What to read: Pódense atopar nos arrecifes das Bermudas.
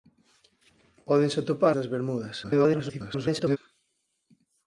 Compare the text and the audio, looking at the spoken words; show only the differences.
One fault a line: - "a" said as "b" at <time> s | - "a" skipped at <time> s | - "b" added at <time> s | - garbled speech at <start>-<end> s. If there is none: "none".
- "nos arrecifes" skipped at 1.8 s
- garbled speech at 2.4-3.6 s